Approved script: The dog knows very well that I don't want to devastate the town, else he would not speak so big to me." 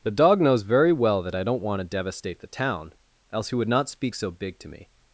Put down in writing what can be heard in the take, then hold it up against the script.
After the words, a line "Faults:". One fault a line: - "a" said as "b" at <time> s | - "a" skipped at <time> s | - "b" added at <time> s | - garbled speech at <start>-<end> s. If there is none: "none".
The dog knows very well that I don't want to devastate the town, else he would not speak so big to me."
Faults:
none